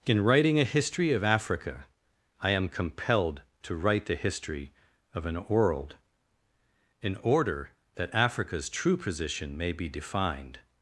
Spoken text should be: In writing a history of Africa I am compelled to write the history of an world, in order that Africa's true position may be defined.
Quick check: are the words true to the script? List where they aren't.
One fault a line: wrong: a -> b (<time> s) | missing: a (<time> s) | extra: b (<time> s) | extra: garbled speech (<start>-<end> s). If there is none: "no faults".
no faults